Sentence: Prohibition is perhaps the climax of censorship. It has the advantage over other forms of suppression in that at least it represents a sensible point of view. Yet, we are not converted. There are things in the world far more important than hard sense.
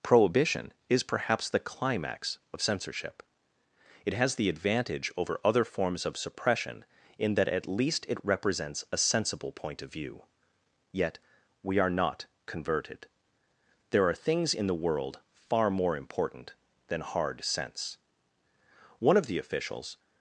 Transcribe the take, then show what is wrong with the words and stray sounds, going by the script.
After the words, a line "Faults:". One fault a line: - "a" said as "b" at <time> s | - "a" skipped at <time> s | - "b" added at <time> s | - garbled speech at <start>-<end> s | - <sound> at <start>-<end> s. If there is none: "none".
Prohibition is perhaps the climax of censorship. It has the advantage over other forms of suppression in that at least it represents a sensible point of view. Yet, we are not converted. There are things in the world far more important than hard sense. One of the officials
Faults:
- "One of the officials" added at 19.0 s